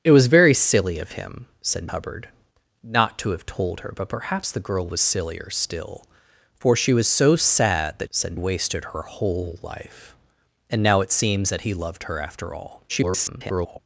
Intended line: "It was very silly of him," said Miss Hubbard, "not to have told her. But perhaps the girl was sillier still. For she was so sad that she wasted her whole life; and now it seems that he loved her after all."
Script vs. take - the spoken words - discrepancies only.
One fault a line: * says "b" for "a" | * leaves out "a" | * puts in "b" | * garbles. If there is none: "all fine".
* leaves out "Miss"
* says "said" for "she"
* garbles